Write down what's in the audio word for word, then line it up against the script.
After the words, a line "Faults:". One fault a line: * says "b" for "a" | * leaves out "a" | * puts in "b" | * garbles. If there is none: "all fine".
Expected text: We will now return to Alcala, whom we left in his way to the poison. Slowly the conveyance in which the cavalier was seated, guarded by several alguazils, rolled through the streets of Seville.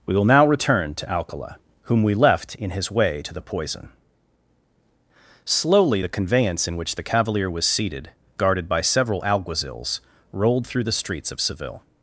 We will now return to Alcala, whom we left in his way to the poison. Slowly the conveyance in which the cavalier was seated, guarded by several alguazils, rolled through the streets of Seville.
Faults:
all fine